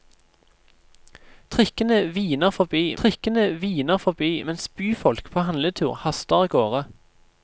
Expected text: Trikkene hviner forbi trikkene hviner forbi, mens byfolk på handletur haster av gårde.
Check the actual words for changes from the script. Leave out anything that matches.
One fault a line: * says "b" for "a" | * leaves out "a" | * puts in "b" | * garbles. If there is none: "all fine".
all fine